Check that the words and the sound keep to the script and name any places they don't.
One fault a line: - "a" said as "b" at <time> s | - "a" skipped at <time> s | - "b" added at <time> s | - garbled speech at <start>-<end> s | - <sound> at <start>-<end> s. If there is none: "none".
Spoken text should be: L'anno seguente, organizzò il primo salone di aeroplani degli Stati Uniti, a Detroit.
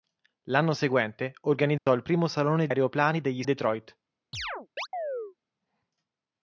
- dropout at 1.8-1.9 s
- "di" skipped at 2.7 s
- "Stati Uniti a" skipped at 3.4 s
- chirp at 4.3-5.3 s